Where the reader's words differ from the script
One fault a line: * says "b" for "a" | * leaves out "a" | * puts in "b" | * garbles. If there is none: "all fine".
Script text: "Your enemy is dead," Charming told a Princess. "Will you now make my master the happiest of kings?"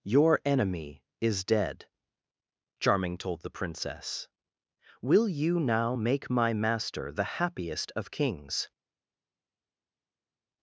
* says "the" for "a"